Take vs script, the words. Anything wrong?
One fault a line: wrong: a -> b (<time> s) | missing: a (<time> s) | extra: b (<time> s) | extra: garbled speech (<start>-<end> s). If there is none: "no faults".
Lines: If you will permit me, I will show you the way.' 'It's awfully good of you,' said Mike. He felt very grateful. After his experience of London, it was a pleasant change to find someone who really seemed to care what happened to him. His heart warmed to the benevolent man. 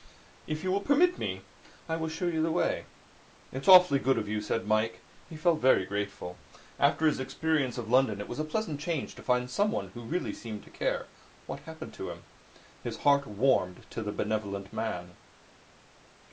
no faults